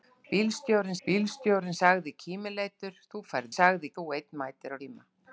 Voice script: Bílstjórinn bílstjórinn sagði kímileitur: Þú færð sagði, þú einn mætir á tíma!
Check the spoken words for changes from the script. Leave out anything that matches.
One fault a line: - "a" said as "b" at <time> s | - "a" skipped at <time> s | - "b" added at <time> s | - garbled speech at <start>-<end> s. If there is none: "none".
none